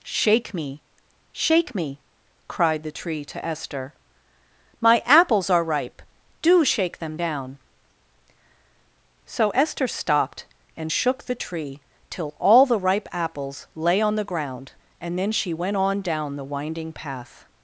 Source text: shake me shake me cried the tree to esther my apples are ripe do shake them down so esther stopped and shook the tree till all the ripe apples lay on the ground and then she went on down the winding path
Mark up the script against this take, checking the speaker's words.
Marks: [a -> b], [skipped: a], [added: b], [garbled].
shake me shake me cried the tree to esther my apples are ripe do shake them down so esther stopped and shook the tree till all the ripe apples lay on the ground and then she went on down the winding path